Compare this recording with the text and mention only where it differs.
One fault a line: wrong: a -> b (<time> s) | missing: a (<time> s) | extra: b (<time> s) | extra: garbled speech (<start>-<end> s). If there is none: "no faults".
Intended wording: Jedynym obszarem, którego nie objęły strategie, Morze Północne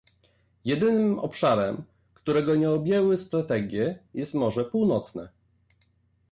extra: jest (4.1 s)